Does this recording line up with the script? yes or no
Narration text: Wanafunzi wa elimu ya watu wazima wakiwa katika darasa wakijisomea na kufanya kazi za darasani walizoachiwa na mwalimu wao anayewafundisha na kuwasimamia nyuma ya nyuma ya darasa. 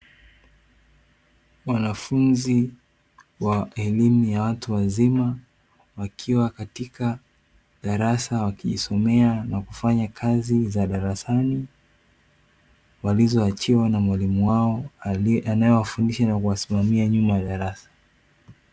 no